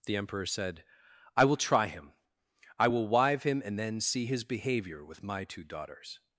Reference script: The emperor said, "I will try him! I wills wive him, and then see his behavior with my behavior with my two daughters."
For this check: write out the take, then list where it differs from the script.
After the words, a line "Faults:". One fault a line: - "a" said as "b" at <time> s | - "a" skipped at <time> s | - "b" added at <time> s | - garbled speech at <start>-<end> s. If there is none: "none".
The emperor said, "I will try him! I will wive him, and then see his behavior with my two daughters."
Faults:
- "wills" said as "will" at 2.9 s
- "behavior with my" skipped at 5.4 s